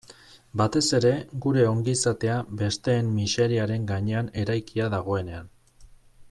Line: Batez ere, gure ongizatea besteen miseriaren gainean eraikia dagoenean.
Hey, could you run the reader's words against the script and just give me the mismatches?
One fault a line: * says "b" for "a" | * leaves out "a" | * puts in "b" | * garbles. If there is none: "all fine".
all fine